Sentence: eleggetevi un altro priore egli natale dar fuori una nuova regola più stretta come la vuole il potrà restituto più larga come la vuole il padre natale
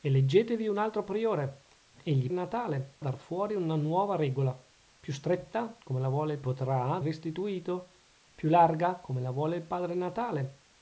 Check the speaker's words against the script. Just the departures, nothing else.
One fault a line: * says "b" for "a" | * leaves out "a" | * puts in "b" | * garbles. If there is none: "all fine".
all fine